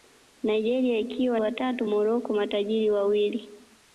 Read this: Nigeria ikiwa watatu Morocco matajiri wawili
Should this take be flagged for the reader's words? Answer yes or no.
no